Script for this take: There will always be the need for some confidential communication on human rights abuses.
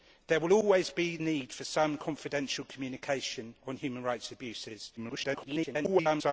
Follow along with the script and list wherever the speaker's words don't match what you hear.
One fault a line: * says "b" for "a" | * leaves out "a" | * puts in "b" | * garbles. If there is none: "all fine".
* leaves out "the"
* garbles